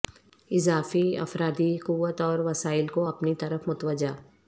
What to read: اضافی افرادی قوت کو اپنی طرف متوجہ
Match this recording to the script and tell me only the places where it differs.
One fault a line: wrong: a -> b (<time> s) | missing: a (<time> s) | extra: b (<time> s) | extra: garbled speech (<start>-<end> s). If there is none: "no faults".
extra: اور وسائل (2.2 s)